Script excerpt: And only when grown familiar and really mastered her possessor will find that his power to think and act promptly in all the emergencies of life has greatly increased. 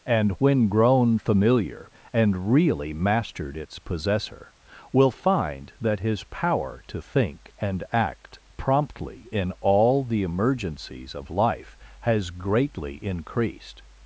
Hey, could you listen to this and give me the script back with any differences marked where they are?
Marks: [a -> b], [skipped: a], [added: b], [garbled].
And [skipped: only] when grown familiar and really mastered [her -> its] possessor will find that his power to think and act promptly in all the emergencies of life has greatly increased.